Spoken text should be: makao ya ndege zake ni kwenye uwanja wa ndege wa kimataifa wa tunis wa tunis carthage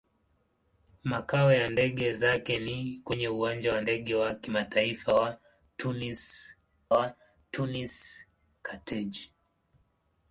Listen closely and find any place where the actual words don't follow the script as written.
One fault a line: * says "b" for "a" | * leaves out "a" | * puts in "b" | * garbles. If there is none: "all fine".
all fine